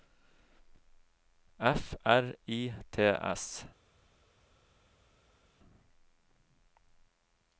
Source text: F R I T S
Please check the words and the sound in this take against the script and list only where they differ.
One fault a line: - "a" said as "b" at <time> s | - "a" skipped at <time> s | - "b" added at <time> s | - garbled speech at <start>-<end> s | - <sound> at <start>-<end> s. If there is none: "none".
none